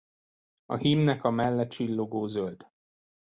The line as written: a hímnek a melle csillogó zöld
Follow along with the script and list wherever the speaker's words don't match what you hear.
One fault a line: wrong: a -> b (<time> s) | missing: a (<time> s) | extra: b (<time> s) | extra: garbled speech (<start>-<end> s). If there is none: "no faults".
no faults